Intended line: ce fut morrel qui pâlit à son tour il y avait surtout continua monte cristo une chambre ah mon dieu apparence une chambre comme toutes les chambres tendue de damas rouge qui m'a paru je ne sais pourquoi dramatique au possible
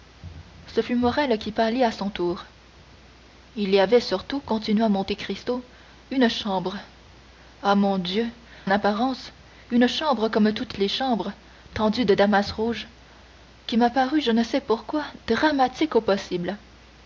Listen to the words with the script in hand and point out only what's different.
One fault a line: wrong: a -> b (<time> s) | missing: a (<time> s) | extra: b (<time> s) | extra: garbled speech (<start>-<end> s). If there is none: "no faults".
no faults